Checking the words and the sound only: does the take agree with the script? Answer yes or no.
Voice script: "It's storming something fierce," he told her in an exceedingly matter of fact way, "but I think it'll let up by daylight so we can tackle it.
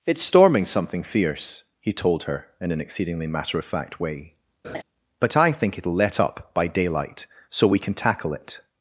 no